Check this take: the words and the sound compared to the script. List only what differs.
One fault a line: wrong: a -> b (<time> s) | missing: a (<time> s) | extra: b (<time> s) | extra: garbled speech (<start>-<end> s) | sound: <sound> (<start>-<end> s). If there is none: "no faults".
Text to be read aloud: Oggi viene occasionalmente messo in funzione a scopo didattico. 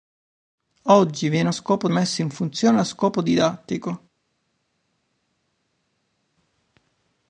wrong: occasionalmente -> scopo (1.5 s)